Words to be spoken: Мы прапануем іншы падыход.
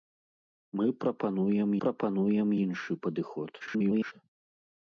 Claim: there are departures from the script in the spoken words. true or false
true